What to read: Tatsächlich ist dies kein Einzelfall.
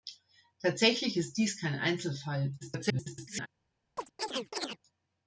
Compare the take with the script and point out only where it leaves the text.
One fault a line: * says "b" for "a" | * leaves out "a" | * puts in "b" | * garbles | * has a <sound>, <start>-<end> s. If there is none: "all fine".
* garbles
* has a chirp, 4.0-4.8 s